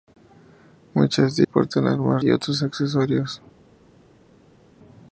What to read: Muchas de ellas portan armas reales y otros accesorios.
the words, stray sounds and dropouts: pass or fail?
fail